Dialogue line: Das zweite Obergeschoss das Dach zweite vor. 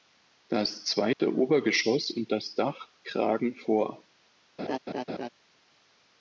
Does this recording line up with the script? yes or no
no